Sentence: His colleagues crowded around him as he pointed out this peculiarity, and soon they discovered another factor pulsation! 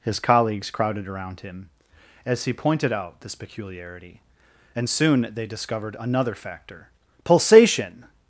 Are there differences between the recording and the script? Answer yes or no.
no